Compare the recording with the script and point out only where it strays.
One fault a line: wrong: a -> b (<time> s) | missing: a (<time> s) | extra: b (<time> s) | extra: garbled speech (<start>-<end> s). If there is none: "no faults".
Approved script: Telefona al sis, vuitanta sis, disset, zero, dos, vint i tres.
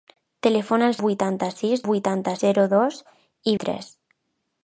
missing: sis (0.9 s)
wrong: disset -> vuitanta (1.9 s)
missing: vint (3.0 s)